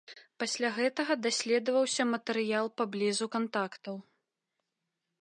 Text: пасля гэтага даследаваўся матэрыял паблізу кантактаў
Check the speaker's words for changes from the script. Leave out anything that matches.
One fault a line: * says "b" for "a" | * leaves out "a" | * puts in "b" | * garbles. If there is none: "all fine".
all fine